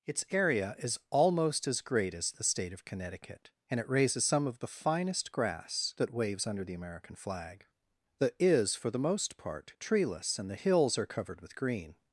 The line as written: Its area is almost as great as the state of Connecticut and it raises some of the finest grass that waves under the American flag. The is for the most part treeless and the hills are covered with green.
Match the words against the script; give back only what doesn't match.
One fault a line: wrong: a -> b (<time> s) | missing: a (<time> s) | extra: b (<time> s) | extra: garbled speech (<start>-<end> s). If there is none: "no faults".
no faults